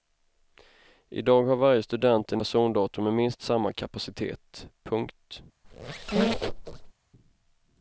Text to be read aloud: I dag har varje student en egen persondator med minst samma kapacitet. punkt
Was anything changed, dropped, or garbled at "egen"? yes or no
yes